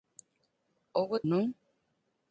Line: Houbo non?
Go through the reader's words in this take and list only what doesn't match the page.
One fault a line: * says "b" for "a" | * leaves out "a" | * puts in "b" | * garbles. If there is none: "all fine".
all fine